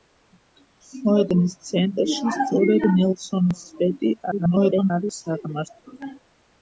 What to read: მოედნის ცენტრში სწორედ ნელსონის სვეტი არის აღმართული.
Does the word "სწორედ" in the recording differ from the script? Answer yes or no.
no